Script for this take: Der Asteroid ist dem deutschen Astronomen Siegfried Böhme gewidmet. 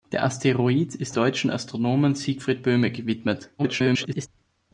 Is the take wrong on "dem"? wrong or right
wrong